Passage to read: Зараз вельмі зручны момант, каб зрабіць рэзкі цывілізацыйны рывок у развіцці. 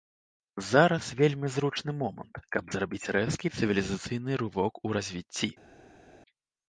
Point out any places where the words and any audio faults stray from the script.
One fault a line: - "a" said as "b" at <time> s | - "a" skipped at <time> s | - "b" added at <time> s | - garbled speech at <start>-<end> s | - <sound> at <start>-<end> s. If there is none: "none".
none